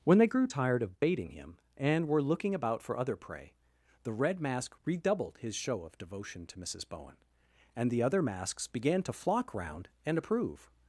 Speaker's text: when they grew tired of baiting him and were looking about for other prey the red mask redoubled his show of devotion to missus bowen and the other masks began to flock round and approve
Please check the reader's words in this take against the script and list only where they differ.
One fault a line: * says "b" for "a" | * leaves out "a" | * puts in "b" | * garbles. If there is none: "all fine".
all fine